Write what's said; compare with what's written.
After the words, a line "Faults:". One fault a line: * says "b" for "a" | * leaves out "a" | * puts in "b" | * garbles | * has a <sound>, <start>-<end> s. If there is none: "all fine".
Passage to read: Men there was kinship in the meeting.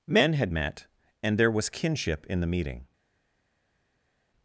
Men had met and there was kinship in the meeting.
Faults:
* puts in "had met and"